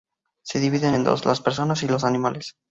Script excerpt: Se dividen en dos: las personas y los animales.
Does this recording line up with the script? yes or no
yes